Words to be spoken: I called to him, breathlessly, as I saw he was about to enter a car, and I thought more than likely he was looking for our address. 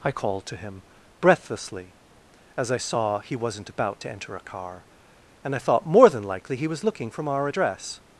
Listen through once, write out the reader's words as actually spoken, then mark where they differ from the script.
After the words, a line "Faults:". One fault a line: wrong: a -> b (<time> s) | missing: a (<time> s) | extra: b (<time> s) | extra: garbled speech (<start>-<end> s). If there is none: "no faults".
I called to him, breathlessly, as I saw he wasn't about to enter a car, and I thought more than likely he was looking from our address.
Faults:
wrong: was -> wasn't (3.4 s)
wrong: for -> from (7.1 s)